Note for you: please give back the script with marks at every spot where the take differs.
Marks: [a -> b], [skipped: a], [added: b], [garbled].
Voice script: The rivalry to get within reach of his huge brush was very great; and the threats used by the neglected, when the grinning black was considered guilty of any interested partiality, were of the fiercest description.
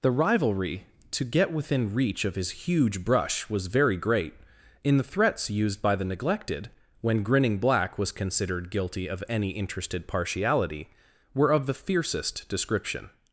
The rivalry to get within reach of his huge brush was very great; [and -> in] the threats used by the neglected, when [skipped: the] grinning black was considered guilty of any interested partiality, were of the fiercest description.